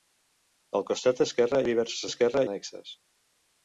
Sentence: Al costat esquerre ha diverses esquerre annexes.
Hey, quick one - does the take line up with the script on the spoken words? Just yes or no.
yes